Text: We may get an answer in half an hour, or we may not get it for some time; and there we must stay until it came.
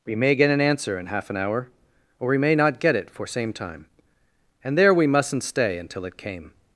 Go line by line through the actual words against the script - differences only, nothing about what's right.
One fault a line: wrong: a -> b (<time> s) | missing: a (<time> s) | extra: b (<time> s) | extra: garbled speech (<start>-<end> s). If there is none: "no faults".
wrong: some -> same (3.3 s)
wrong: must -> mustn't (5.1 s)